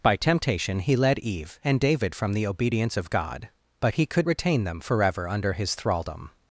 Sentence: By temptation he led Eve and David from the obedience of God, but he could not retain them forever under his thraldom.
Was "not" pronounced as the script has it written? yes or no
no